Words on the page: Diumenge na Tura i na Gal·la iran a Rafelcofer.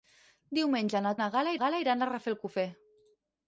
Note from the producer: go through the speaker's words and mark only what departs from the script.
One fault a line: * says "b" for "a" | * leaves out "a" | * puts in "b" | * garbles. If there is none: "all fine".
* leaves out "Tura"
* puts in "Gal·la"